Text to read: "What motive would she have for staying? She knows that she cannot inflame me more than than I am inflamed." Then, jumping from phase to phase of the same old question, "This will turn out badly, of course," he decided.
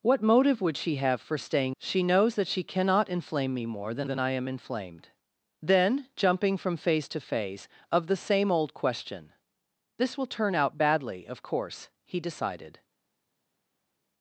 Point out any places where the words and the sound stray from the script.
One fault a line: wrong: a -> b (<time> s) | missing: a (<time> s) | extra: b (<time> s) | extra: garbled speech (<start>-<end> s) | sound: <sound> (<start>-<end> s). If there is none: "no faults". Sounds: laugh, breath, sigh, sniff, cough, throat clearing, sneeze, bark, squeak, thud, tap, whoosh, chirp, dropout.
no faults